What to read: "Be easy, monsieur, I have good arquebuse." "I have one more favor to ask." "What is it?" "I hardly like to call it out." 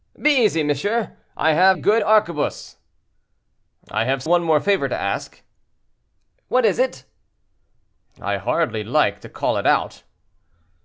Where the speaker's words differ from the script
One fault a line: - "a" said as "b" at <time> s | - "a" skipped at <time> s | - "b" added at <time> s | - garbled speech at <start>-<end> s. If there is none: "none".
none